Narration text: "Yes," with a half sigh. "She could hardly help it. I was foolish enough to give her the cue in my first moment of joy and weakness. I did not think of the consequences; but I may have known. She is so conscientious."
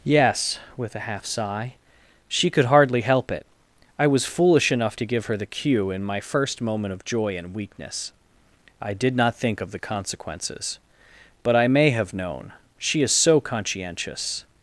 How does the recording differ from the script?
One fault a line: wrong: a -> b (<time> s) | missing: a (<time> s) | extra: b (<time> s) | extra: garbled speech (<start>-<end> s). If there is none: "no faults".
no faults